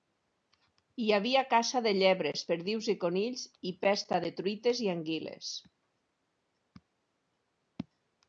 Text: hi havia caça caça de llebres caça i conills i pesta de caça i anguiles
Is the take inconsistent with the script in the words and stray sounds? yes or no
yes